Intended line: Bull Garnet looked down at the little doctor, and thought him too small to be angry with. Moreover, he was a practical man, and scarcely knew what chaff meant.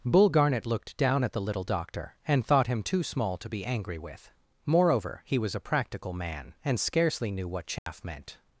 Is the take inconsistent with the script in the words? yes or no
no